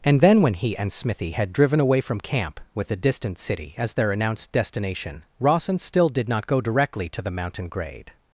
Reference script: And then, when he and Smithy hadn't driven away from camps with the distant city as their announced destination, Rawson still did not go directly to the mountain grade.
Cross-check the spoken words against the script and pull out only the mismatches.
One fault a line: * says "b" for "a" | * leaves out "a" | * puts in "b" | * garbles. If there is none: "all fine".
* says "had" for "hadn't"
* says "camp" for "camps"